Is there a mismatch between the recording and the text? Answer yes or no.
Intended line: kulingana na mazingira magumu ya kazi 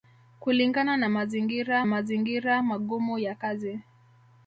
yes